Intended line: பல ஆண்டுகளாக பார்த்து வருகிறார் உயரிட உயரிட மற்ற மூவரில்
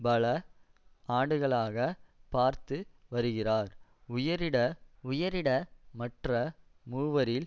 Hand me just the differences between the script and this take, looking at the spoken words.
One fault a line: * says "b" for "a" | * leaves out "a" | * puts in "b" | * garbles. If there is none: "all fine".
all fine